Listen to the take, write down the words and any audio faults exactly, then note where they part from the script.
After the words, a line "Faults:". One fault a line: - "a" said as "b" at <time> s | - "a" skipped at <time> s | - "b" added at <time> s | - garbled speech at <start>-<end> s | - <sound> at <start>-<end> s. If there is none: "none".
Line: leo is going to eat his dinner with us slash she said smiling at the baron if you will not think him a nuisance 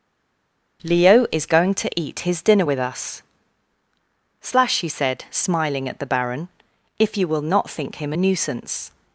leo is going to eat his dinner with us slash he said smiling at the baron if you will not think him a nuisance
Faults:
- "she" said as "he" at 4.8 s